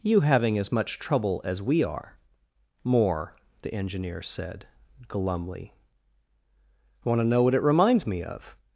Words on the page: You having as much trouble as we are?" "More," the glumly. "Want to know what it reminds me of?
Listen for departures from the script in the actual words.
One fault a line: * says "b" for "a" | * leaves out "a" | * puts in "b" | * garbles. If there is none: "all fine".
* puts in "engineer said"